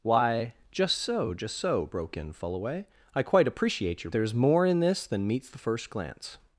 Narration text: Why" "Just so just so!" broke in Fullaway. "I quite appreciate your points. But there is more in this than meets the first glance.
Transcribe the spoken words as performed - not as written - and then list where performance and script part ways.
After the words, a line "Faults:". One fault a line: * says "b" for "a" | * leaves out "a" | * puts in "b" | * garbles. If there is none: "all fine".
Why" "Just so just so!" broke in Fullaway. "I quite appreciate your there is more in this than meets the first glance.
Faults:
* leaves out "points But"